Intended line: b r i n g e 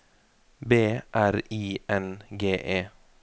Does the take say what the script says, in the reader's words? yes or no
yes